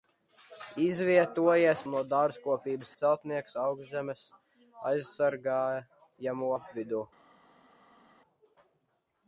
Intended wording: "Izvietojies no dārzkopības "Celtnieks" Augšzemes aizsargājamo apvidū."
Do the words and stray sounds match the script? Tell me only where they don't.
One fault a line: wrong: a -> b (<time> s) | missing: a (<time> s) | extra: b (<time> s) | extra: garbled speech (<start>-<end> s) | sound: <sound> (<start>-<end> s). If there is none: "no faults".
no faults